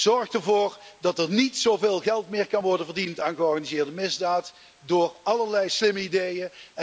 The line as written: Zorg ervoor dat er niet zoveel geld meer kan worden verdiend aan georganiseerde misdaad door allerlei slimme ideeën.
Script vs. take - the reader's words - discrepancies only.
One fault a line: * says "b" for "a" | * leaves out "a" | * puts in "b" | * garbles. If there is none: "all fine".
all fine